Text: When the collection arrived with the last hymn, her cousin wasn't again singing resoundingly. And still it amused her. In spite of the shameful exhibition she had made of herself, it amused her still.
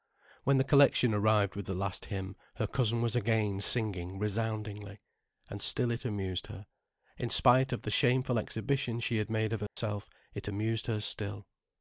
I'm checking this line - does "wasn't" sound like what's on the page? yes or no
no